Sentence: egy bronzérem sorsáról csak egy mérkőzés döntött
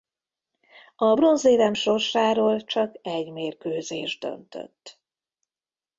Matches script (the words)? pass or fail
fail